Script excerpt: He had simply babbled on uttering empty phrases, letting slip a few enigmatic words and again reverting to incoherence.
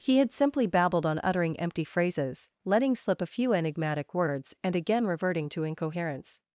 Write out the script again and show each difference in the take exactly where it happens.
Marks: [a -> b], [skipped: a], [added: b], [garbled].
He had simply babbled on uttering empty phrases, letting slip a few enigmatic words and again reverting to incoherence.